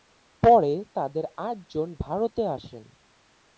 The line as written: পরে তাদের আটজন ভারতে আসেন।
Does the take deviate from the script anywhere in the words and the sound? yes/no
no